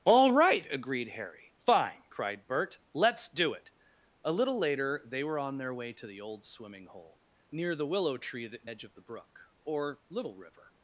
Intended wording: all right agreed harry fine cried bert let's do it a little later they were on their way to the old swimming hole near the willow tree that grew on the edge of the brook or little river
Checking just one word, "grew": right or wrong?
wrong